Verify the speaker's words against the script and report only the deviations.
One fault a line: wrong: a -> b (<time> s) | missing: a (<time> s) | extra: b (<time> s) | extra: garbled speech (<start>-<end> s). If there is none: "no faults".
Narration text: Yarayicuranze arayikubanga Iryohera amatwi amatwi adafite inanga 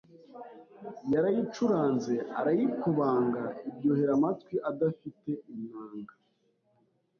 missing: amatwi (4.5 s)